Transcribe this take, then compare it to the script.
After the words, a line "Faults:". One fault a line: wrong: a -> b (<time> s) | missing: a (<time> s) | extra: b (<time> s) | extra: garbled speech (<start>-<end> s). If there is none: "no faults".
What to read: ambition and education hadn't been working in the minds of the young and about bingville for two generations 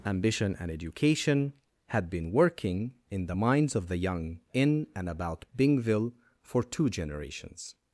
ambition and education had been working in the minds of the young in and about bingville for two generations
Faults:
wrong: hadn't -> had (1.9 s)
extra: in (4.5 s)